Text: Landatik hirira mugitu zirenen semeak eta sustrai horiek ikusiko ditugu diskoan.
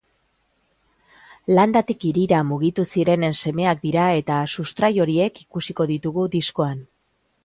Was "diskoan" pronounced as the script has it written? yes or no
yes